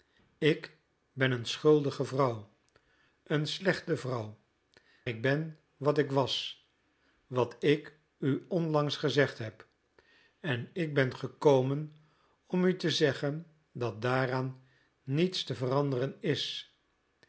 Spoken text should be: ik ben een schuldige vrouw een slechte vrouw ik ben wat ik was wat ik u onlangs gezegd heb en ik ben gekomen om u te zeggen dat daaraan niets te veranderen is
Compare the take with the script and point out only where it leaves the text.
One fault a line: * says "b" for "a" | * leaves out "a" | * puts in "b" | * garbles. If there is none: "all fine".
all fine